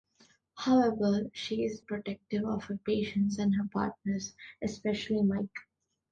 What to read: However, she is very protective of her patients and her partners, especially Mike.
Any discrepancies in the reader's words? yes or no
yes